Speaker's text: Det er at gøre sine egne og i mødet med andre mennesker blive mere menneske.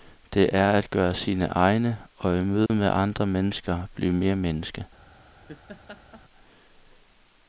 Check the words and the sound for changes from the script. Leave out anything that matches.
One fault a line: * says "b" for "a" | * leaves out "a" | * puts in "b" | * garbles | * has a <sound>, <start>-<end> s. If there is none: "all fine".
* has a dropout, 2.7-2.7 s
* has a laugh, 5.5-6.2 s